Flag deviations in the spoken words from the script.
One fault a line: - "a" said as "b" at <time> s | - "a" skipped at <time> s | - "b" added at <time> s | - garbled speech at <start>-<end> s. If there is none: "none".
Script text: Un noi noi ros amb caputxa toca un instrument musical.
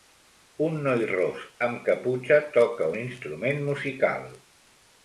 - "noi" skipped at 1.0 s